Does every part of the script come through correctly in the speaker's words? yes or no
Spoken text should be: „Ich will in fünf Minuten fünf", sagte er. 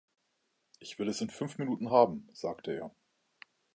no